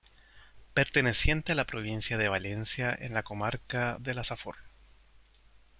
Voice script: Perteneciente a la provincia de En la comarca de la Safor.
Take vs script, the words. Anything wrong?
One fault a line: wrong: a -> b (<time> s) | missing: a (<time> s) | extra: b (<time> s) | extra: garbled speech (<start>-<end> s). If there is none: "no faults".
extra: Valencia (2.3 s)